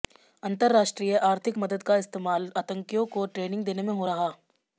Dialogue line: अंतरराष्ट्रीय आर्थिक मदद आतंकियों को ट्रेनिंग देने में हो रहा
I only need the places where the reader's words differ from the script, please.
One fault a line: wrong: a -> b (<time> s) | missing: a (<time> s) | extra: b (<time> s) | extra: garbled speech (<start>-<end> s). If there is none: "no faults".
extra: का इस्तेमाल (1.8 s)